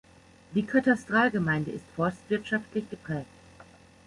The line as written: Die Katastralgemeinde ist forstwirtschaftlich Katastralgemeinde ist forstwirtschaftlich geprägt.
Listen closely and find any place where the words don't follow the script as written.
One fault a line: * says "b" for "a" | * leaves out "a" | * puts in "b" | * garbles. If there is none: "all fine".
* leaves out "Katastralgemeinde ist forstwirtschaftlich"